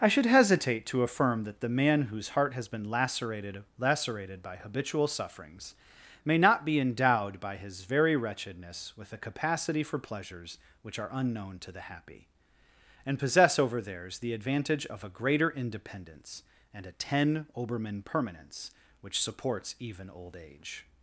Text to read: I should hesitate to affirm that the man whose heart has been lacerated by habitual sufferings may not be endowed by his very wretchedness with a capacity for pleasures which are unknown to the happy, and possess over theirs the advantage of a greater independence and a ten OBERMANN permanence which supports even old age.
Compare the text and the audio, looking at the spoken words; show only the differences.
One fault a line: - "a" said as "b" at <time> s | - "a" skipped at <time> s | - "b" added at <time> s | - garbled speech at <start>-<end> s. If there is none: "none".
- "lacerated" added at 3.8 s